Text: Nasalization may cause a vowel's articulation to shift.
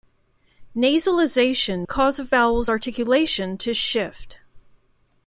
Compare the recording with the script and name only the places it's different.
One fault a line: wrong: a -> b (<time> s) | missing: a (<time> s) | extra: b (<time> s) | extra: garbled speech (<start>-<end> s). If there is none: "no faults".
missing: may (1.9 s)